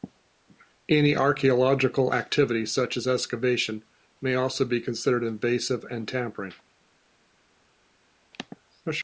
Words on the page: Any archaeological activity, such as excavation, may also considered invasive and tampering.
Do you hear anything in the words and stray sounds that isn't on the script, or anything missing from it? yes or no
yes